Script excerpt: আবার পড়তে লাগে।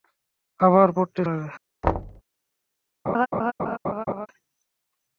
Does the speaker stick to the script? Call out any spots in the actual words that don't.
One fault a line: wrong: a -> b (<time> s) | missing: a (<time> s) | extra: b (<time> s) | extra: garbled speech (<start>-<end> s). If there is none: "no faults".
no faults